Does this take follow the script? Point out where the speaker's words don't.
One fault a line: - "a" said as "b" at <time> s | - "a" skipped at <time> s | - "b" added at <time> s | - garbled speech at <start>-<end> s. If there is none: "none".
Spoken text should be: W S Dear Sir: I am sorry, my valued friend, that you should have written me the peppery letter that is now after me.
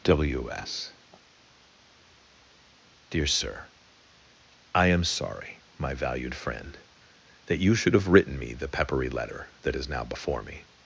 - "after" said as "before" at 10.0 s